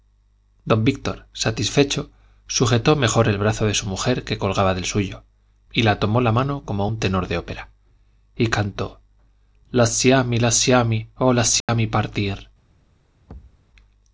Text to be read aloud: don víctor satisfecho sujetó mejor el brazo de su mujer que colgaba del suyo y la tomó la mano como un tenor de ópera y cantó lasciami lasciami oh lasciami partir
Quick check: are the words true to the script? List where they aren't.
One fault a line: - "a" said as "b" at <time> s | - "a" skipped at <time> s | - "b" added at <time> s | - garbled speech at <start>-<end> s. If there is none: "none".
none